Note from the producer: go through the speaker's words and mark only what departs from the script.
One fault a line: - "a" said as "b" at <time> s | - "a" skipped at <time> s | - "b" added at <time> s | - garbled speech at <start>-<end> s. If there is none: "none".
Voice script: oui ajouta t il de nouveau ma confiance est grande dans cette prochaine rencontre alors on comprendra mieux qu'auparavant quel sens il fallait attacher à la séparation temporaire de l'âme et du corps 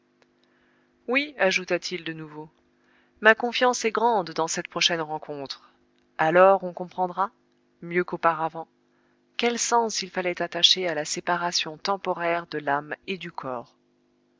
none